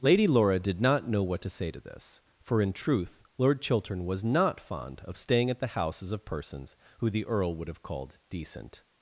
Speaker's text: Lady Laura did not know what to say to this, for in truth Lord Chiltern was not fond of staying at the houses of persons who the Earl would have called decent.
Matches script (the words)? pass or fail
pass